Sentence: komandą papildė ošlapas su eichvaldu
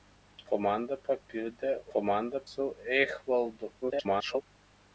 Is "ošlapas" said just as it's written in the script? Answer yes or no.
no